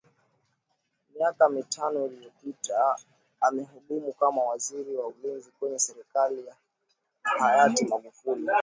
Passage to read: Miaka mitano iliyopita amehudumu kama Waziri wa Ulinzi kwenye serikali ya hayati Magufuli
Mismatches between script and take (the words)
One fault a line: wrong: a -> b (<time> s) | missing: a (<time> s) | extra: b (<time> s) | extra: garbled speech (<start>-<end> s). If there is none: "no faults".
no faults